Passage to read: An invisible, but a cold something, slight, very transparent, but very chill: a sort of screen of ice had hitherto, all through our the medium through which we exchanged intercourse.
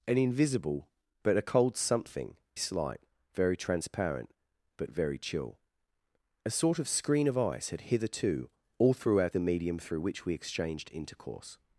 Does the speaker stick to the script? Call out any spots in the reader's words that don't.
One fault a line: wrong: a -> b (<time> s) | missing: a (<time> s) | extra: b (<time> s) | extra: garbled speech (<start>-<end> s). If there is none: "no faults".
no faults